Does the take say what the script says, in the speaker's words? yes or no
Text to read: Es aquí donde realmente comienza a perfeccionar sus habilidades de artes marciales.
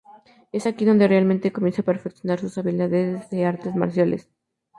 yes